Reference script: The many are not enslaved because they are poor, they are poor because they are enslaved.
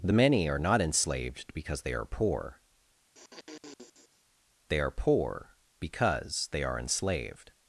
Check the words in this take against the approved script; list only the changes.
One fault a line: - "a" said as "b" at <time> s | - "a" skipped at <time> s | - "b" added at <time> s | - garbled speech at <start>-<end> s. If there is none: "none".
none